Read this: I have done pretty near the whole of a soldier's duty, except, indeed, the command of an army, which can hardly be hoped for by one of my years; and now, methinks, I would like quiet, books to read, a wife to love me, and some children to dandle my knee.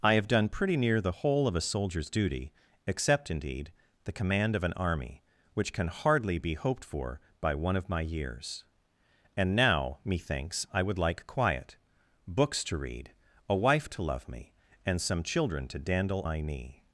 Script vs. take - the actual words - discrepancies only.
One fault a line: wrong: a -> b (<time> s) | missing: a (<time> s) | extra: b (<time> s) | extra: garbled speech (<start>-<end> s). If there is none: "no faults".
no faults